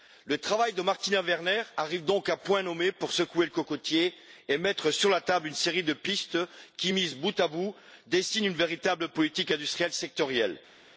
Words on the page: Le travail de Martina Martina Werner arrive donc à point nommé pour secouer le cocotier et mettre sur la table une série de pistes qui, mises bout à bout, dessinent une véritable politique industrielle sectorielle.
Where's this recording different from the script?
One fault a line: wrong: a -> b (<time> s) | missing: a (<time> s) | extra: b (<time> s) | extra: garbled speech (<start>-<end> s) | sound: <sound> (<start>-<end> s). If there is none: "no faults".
missing: Martina (1.2 s)